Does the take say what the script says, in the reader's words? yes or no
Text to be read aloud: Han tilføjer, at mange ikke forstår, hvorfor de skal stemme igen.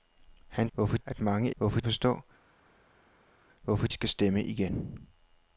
no